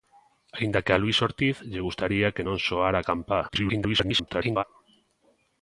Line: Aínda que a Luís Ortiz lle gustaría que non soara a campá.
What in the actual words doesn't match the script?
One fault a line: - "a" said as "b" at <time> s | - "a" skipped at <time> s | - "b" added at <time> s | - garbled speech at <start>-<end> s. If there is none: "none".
- garbled speech at 3.5-4.6 s